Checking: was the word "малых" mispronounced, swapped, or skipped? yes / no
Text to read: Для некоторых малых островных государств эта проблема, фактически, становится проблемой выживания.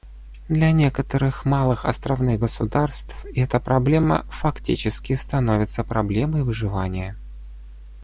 no